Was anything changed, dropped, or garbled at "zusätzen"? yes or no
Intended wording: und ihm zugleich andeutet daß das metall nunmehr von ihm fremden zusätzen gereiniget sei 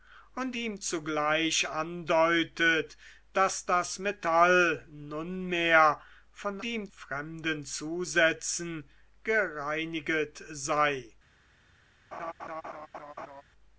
no